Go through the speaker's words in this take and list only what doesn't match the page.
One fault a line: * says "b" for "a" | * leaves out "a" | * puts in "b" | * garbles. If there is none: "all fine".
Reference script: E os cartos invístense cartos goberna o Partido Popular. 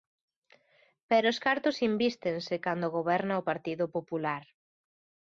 * says "Pero" for "E"
* says "cando" for "cartos"